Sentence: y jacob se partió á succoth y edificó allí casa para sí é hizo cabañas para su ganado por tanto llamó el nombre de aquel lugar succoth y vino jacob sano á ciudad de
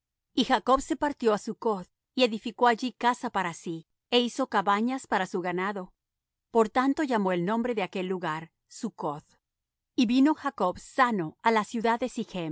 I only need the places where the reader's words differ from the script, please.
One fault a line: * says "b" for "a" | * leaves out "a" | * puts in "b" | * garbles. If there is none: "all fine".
* puts in "la"